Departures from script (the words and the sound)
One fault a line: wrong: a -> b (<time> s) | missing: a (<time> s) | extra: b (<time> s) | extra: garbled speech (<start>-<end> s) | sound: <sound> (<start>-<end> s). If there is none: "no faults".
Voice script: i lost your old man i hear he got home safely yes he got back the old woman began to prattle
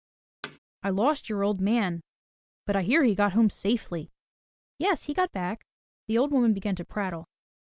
sound: thud (0.4-0.6 s)
extra: but (2.7 s)